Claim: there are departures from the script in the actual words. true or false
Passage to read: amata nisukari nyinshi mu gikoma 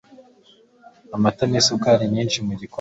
false